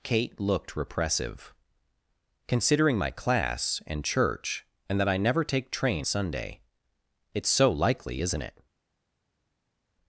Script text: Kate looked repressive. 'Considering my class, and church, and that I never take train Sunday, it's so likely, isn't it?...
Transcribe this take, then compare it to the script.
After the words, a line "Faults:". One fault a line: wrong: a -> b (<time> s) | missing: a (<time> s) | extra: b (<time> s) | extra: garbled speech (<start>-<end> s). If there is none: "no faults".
Kate looked repressive. 'Considering my class, and church, and that I never take train Sunday, it's so likely, isn't it?...
Faults:
no faults